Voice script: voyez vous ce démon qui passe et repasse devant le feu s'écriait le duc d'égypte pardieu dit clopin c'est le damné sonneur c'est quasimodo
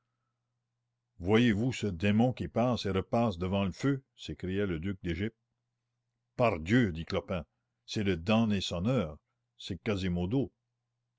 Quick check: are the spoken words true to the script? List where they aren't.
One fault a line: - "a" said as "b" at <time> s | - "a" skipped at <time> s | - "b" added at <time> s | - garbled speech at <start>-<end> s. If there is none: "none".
none